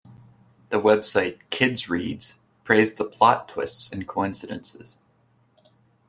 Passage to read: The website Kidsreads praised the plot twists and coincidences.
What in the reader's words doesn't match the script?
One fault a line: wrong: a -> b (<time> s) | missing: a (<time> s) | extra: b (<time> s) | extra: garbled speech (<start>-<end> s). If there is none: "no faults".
no faults